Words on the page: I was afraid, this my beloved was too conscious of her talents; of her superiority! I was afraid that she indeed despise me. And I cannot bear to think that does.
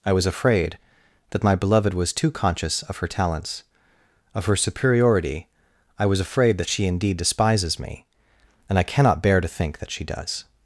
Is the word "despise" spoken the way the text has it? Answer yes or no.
no